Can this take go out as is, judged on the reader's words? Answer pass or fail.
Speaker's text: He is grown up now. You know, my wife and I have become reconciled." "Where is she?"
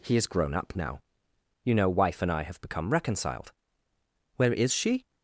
fail